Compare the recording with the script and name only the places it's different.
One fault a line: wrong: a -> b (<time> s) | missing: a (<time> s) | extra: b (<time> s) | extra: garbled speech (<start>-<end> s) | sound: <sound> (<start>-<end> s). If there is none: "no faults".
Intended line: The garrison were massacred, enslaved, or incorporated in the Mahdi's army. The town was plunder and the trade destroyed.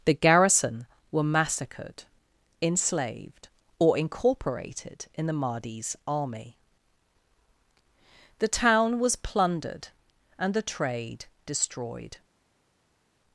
wrong: plunder -> plundered (9.2 s)